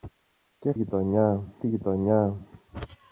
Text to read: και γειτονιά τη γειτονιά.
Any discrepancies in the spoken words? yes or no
no